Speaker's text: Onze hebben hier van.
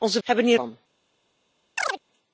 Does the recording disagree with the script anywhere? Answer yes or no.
no